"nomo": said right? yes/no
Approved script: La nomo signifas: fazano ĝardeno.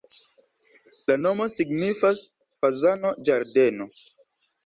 yes